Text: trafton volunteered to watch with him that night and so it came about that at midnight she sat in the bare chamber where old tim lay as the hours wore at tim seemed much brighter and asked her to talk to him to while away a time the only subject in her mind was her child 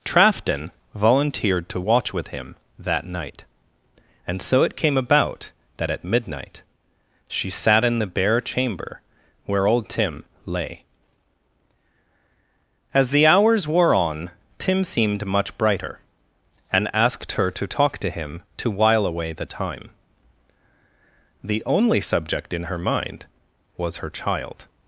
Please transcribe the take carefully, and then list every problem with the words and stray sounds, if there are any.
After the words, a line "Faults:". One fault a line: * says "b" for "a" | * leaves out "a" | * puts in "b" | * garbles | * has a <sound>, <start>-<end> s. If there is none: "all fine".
trafton volunteered to watch with him that night and so it came about that at midnight she sat in the bare chamber where old tim lay as the hours wore on tim seemed much brighter and asked her to talk to him to while away the time the only subject in her mind was her child
Faults:
* says "on" for "at"
* says "the" for "a"